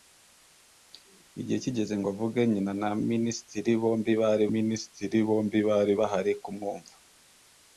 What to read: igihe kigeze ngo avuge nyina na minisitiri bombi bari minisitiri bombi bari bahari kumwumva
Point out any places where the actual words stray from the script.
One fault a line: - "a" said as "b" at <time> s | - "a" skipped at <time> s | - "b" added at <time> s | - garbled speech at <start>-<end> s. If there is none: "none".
none